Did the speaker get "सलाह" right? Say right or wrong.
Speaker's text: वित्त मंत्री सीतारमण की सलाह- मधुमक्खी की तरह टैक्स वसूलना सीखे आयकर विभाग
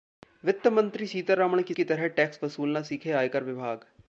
wrong